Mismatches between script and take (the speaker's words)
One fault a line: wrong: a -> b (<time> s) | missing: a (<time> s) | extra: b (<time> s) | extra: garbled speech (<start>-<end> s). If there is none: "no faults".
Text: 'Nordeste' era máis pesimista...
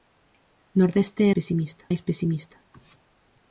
wrong: era -> pesimista (1.4 s)